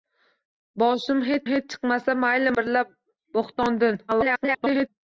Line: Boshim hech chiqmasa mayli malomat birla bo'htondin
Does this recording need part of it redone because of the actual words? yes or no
yes